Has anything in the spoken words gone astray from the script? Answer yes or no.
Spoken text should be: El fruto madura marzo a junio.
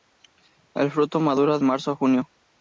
no